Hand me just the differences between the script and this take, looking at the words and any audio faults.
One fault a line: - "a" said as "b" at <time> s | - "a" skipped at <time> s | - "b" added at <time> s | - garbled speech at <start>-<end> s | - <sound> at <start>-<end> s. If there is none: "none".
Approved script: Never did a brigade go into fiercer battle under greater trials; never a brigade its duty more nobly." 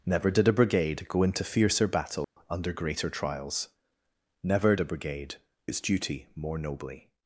- dropout at 2.2-2.4 s